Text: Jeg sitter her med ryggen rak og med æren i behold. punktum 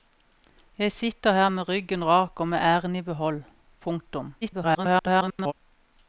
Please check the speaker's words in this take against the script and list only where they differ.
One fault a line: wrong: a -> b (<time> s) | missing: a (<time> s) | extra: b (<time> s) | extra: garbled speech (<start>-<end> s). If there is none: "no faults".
extra: garbled speech (4.4-5.5 s)